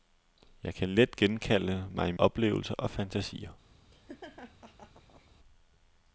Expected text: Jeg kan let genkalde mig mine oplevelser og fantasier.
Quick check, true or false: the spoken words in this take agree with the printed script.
false